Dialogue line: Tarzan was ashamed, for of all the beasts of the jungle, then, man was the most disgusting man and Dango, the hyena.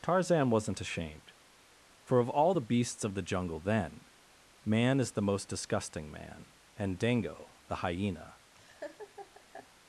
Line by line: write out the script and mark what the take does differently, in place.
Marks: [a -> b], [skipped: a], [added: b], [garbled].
Tarzan [was -> wasn't] ashamed, for of all the beasts of the jungle, then, man [was -> is] the most disgusting man and Dango, the hyena.